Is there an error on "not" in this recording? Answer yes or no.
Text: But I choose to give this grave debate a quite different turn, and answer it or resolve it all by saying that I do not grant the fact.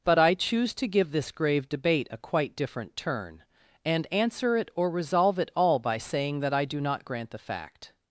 no